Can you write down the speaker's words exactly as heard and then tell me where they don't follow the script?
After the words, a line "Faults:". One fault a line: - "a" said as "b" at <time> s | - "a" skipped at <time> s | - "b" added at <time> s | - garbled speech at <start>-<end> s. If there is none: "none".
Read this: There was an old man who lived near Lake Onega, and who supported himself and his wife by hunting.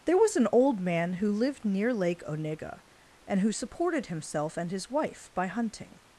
There was an old man who lived near Lake Onega, and who supported himself and his wife by hunting.
Faults:
none